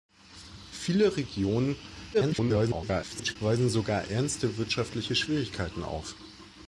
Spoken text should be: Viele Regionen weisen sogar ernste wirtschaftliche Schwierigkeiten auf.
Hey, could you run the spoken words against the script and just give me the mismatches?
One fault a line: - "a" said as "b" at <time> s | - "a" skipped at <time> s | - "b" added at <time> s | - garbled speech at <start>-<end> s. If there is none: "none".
- garbled speech at 2.1-3.4 s